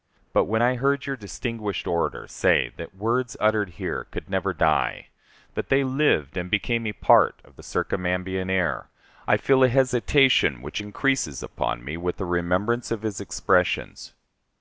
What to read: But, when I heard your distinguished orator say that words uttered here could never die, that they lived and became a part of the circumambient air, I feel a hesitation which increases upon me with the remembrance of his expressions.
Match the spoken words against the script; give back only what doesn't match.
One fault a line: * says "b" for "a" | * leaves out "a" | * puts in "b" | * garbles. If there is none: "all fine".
all fine